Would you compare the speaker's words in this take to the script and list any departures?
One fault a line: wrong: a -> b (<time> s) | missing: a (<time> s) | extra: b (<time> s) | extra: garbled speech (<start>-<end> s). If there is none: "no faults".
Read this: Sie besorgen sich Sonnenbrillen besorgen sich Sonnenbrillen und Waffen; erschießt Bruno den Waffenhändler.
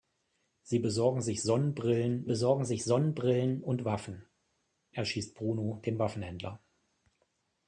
no faults